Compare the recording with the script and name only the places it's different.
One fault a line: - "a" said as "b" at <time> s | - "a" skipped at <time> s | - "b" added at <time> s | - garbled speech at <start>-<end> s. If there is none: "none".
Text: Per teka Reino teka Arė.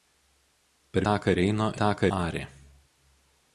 none